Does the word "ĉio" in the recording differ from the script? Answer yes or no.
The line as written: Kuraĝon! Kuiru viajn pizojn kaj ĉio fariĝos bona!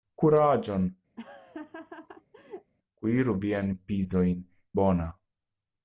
yes